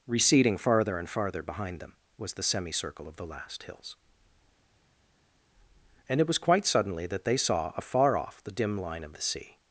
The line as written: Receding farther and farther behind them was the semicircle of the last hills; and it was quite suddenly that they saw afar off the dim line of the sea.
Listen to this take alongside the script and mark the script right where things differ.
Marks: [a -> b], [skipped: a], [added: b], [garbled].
Receding farther and farther behind them was the semicircle of the last hills; and it was quite suddenly that they saw afar off the dim line of the sea.